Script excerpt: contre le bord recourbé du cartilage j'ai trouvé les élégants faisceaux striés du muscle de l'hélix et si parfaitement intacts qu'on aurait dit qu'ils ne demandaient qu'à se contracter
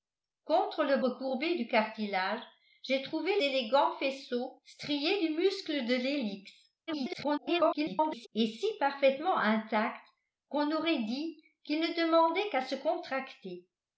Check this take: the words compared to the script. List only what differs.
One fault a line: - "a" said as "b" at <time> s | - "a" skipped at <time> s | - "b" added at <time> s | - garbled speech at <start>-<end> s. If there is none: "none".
- "bord" skipped at 1.0 s
- "les" skipped at 3.3 s
- garbled speech at 6.9-8.3 s